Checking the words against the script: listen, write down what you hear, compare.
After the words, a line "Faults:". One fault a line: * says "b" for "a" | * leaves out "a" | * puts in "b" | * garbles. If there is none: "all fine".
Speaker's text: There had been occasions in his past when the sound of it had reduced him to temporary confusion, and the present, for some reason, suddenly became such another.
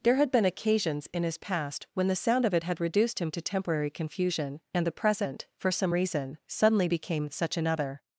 There had been occasions in his past when the sound of it had reduced him to temporary confusion, and the present, for some reason, suddenly became such another.
Faults:
all fine